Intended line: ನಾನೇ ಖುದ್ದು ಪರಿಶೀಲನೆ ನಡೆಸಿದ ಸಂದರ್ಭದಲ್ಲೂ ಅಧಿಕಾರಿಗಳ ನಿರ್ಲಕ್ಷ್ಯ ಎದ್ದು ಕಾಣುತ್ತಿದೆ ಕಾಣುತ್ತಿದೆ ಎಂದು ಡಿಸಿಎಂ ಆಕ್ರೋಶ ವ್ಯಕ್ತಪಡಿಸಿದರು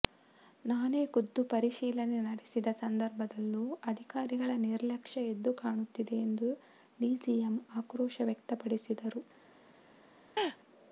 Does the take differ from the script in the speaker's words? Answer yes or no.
yes